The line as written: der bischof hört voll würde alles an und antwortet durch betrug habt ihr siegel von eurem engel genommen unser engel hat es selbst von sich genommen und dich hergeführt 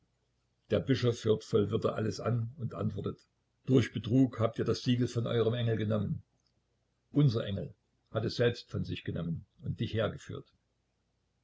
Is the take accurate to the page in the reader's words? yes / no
no